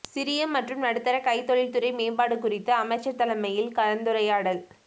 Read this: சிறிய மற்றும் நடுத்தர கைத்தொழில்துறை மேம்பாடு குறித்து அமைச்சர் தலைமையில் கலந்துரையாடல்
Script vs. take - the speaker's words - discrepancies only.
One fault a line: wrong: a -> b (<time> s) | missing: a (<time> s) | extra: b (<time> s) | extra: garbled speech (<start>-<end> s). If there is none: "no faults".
no faults